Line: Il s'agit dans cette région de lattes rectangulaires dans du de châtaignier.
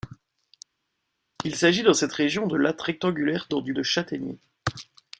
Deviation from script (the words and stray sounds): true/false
false